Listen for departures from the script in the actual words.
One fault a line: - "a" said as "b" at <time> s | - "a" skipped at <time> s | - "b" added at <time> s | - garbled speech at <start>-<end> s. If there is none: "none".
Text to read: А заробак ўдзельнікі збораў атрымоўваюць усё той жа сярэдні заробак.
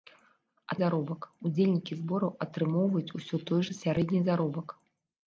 none